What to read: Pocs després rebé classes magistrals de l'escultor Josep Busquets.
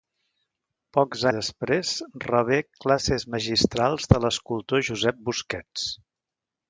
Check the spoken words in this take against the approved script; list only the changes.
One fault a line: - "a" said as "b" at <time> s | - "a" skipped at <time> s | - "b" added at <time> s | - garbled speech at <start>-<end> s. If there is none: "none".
none